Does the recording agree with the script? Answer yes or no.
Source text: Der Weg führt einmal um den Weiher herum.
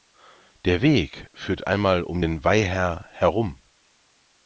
yes